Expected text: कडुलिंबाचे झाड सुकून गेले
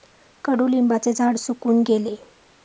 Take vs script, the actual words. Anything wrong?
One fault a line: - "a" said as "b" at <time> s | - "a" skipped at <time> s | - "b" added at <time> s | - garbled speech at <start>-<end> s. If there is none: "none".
none